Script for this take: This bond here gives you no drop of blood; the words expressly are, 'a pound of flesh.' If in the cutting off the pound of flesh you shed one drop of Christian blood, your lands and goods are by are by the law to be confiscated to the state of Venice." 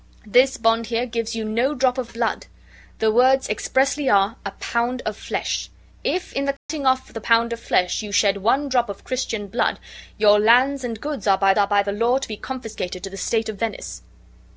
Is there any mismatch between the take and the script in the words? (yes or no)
no